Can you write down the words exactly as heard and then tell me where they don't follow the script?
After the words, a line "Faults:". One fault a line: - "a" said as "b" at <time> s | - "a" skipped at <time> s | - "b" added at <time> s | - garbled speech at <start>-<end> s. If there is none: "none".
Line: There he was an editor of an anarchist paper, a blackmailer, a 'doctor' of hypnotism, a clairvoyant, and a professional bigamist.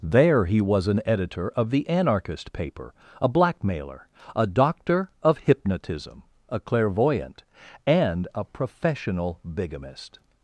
There he was an editor of the anarchist paper, a blackmailer, a 'doctor' of hypnotism, a clairvoyant, and a professional bigamist.
Faults:
- "an" said as "the" at 1.7 s